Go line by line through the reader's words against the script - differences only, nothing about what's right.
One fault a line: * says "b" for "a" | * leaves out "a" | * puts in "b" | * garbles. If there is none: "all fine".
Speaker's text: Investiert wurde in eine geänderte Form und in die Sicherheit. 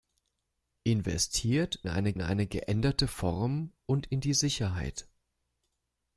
* says "eine" for "wurde"